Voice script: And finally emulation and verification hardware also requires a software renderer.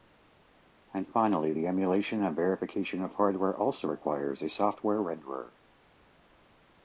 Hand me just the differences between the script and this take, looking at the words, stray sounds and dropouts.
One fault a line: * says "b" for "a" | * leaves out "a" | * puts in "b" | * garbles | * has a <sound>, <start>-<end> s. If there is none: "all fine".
* puts in "the"
* puts in "of"